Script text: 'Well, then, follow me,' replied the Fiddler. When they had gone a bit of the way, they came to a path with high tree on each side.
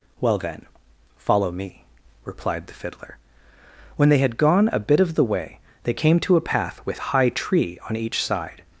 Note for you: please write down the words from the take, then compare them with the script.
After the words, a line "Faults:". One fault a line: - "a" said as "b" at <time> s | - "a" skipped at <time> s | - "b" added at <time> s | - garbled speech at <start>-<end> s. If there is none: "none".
'Well, then, follow me,' replied the Fiddler. When they had gone a bit of the way, they came to a path with high tree on each side.
Faults:
none